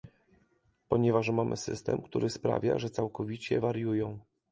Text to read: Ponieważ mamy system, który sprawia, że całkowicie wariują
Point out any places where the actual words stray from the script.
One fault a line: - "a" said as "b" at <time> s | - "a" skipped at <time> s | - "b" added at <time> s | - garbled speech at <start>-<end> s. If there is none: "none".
none